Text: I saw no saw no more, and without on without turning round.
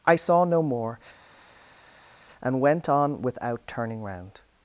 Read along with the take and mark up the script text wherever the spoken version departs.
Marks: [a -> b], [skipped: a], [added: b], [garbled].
I saw no [skipped: saw no] more, and [without -> went] on without turning round.